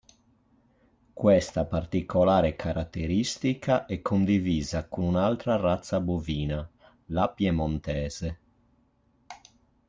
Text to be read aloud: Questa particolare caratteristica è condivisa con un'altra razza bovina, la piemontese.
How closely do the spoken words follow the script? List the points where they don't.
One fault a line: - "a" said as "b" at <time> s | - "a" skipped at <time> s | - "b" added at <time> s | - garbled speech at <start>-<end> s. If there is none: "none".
none